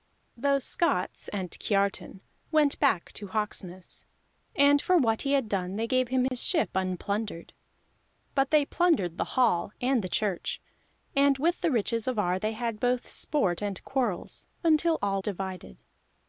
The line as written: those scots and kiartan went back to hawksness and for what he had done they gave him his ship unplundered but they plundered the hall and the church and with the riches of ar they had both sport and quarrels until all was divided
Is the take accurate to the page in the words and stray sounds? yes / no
no